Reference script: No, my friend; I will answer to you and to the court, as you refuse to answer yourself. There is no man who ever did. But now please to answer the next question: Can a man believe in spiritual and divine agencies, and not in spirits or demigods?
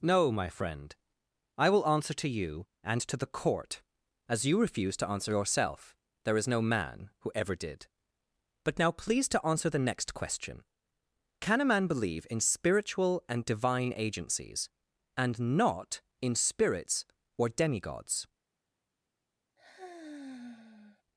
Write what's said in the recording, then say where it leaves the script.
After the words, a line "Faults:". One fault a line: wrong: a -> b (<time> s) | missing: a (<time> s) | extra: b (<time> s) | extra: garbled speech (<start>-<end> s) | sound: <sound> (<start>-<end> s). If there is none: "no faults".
No, my friend; I will answer to you and to the court, as you refuse to answer yourself. There is no man who ever did. But now please to answer the next question: Can a man believe in spiritual and divine agencies, and not in spirits or demigods?
Faults:
sound: sigh (19.6-21.0 s)